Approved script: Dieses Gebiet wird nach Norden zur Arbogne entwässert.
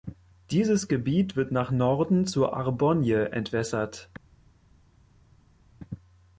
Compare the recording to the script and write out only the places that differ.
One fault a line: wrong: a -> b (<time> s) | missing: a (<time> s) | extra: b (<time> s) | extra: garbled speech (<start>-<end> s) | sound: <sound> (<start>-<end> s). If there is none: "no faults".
no faults